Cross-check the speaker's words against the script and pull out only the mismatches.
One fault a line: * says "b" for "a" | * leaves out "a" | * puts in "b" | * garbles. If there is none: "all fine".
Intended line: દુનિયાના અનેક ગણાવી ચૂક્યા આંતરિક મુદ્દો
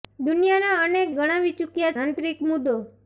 all fine